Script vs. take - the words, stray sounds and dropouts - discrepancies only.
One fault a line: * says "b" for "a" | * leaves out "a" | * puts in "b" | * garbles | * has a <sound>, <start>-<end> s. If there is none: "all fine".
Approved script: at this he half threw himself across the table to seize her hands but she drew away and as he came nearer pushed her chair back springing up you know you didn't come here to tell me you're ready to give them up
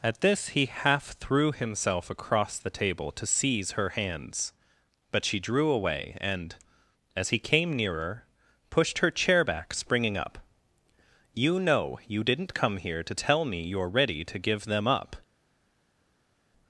all fine